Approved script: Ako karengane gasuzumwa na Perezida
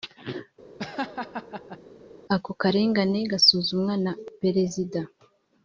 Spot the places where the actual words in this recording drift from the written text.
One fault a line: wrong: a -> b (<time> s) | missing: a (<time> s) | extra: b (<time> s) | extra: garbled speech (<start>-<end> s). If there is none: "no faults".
no faults